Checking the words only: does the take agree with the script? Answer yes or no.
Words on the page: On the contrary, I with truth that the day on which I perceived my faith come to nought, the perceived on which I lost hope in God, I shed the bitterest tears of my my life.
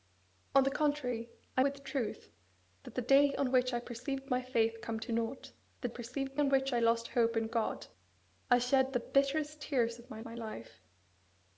yes